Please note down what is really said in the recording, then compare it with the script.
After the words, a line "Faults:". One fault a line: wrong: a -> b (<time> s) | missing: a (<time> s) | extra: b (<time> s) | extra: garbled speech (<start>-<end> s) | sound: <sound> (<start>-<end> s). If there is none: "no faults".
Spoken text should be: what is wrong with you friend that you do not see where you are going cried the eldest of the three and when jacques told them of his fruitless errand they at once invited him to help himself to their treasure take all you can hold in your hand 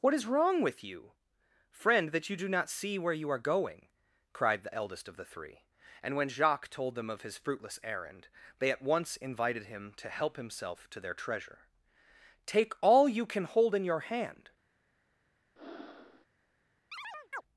what is wrong with you friend that you do not see where you are going cried the eldest of the three and when jacques told them of his fruitless errand they at once invited him to help himself to their treasure take all you can hold in your hand
Faults:
sound: breath (15.6-16.3 s)
sound: chirp (16.9-17.4 s)